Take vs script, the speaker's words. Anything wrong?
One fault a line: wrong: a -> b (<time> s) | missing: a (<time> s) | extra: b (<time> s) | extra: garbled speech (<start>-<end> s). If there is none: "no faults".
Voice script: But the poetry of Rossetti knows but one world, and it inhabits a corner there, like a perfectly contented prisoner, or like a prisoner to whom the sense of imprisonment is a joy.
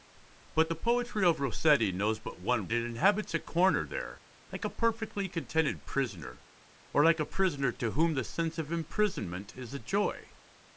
missing: world and (2.7 s)